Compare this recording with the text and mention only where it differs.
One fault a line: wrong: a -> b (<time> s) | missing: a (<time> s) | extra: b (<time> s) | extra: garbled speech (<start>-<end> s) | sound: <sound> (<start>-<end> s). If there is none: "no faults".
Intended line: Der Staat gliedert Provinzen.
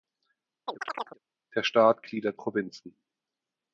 sound: chirp (0.7-1.2 s)